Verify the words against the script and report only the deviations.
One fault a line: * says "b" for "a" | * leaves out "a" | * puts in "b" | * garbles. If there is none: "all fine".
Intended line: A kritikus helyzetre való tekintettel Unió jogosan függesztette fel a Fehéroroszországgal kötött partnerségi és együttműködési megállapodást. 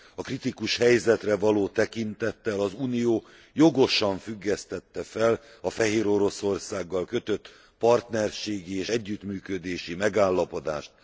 * puts in "az"